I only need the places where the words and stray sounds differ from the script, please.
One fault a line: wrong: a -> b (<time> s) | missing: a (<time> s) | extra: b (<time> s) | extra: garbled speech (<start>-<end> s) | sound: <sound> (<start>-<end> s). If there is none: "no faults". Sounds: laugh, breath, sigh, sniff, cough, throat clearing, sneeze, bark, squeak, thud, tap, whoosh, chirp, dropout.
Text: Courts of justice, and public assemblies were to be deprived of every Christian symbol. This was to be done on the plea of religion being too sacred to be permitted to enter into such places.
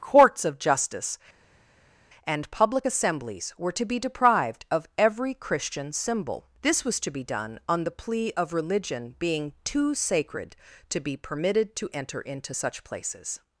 no faults